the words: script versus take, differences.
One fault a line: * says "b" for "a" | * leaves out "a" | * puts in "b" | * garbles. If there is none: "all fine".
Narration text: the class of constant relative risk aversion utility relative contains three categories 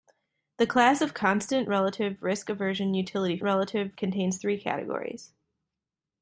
all fine